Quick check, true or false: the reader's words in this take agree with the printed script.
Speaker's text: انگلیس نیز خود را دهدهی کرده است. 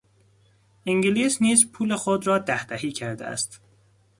false